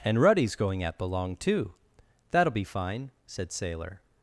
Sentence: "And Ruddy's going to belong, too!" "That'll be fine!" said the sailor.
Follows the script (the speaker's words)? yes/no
no